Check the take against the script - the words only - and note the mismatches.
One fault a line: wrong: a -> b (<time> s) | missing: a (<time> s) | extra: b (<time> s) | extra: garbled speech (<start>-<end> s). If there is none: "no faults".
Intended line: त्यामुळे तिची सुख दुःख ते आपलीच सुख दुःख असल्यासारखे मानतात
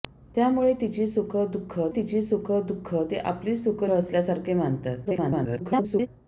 extra: तिची सुख दुःख (2.0 s)
missing: दुःख (3.8 s)
extra: garbled speech (5.0-6.1 s)